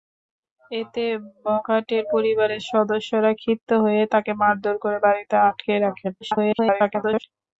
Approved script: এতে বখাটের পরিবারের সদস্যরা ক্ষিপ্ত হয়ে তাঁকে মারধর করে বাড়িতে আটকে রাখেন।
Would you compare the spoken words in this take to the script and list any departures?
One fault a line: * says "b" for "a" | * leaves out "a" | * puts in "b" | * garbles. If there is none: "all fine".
* garbles